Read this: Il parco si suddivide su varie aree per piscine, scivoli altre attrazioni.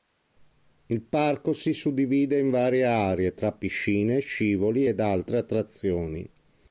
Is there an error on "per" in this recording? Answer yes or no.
yes